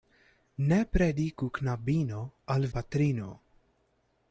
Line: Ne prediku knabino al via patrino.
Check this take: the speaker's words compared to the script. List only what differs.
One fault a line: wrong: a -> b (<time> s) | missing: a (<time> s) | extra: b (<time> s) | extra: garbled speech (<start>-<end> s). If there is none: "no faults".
missing: via (2.6 s)